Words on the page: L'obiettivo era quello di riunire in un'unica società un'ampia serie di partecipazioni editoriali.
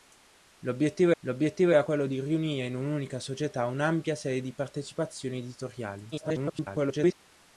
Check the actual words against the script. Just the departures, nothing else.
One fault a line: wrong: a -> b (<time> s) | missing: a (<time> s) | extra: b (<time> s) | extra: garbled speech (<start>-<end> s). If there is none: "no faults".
extra: l'obiettivo (1.2 s)
extra: garbled speech (6.1-7.1 s)